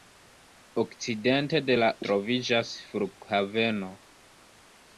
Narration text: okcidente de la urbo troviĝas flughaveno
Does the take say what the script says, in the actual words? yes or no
no